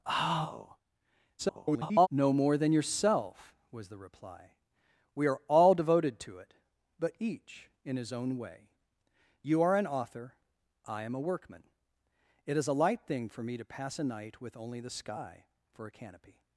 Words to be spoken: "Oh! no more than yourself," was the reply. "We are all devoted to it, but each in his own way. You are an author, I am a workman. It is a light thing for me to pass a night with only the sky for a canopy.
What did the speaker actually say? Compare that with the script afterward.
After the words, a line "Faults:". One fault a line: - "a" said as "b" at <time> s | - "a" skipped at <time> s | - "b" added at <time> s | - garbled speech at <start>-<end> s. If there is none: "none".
"Oh! [garbled] no more than yourself," was the reply. "We are all devoted to it, but each in his own way. You are an author, I am a workman. It is a light thing for me to pass a night with only the sky for a canopy.
Faults:
- garbled speech at 1.4-2.1 s